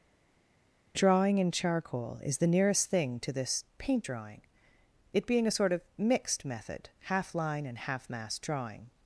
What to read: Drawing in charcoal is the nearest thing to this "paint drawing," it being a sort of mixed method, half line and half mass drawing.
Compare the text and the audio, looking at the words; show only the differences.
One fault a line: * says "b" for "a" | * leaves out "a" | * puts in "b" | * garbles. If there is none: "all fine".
all fine